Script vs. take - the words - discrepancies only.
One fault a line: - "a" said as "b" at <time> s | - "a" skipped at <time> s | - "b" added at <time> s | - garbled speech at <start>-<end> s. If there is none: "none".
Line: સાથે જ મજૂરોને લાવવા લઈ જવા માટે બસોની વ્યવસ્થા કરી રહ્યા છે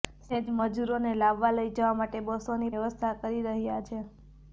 none